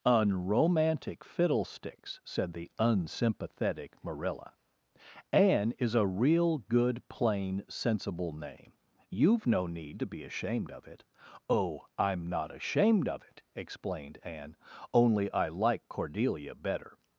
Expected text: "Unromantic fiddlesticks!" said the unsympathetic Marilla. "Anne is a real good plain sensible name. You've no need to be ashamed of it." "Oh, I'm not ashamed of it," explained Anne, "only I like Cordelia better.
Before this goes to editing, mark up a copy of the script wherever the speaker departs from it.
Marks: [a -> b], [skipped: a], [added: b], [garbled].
"Unromantic fiddlesticks!" said the unsympathetic Marilla. "Anne is a real good plain sensible name. You've no need to be ashamed of it." "Oh, I'm not ashamed of it," explained Anne, "only I like Cordelia better.